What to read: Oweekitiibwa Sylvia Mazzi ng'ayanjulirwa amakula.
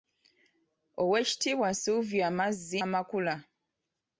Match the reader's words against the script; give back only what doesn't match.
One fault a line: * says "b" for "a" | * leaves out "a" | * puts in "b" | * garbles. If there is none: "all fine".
* leaves out "ng'ayanjulirwa"